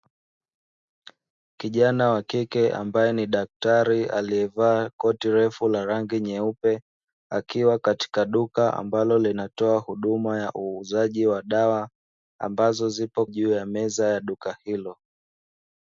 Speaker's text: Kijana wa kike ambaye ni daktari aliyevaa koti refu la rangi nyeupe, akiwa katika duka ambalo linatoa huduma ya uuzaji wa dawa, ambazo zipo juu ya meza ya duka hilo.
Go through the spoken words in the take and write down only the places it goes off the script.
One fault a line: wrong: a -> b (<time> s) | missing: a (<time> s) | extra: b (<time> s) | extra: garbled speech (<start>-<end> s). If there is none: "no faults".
no faults